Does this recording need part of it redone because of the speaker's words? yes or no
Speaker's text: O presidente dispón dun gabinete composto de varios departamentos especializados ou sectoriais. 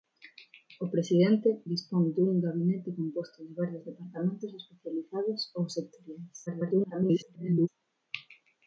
yes